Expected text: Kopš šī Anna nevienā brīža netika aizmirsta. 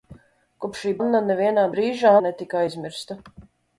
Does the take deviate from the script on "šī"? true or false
false